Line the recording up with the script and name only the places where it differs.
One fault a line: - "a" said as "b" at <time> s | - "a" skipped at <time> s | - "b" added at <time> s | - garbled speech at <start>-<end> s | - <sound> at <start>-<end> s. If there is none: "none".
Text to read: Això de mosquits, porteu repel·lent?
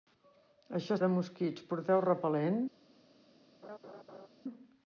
- laugh at 3.6-4.3 s